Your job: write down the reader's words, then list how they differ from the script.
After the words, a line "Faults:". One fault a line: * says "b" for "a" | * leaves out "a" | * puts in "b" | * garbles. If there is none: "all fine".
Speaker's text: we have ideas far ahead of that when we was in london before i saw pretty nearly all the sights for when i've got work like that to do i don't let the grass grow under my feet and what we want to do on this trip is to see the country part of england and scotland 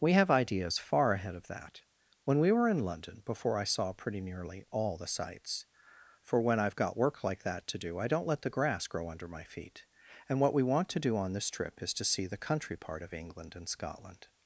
we have ideas far ahead of that when we were in london before i saw pretty nearly all the sights for when i've got work like that to do i don't let the grass grow under my feet and what we want to do on this trip is to see the country part of england and scotland
Faults:
* says "were" for "was"